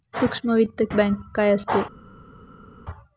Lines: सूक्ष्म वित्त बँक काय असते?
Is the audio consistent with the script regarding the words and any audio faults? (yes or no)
yes